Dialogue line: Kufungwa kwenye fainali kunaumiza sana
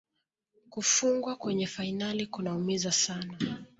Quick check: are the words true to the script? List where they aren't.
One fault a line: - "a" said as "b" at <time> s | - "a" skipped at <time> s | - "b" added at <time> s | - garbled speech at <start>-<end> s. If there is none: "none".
none